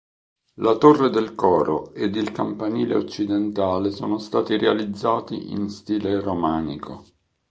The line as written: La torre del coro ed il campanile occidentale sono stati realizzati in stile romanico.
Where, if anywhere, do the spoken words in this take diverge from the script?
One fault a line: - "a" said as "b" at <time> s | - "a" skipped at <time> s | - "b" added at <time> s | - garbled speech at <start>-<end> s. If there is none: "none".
none